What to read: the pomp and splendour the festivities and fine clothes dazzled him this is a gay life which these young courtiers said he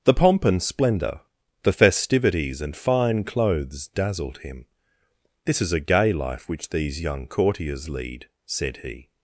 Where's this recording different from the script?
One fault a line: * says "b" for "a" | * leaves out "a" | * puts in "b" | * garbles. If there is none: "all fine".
* puts in "lead"